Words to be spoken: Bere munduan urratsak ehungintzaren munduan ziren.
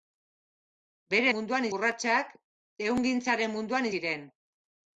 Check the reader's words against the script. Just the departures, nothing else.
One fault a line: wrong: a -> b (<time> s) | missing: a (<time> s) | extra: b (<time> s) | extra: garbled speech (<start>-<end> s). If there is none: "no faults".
no faults